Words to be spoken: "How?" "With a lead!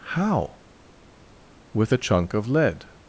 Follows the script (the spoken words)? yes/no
no